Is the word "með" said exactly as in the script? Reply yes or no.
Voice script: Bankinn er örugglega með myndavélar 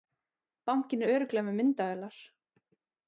yes